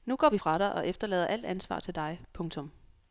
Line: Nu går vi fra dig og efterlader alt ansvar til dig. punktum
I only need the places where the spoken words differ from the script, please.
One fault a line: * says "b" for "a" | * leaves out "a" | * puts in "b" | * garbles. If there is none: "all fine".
all fine